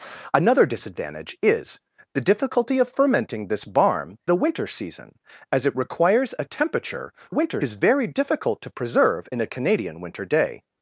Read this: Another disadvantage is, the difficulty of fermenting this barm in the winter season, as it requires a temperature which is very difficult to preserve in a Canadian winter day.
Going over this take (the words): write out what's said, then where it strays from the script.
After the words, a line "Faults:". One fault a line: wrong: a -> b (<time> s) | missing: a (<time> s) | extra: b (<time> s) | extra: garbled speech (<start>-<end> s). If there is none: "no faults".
Another disadvantage is, the difficulty of fermenting this barm the winter season, as it requires a temperature winter is very difficult to preserve in a Canadian winter day.
Faults:
missing: in (4.2 s)
wrong: which -> winter (7.3 s)